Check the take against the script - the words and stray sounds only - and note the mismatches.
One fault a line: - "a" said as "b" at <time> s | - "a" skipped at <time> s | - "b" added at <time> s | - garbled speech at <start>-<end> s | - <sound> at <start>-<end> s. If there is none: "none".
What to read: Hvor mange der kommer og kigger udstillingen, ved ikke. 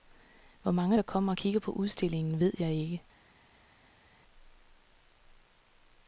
- "på" added at 1.6 s
- "jeg" added at 2.6 s